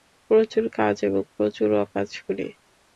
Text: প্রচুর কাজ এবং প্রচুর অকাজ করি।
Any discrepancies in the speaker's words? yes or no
no